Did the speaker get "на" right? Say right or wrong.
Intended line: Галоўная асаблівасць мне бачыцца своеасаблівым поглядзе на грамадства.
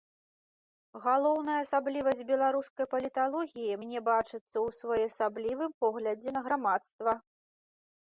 right